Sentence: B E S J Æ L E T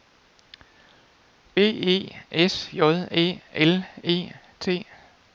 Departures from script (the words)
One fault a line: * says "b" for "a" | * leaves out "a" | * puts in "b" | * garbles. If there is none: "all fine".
all fine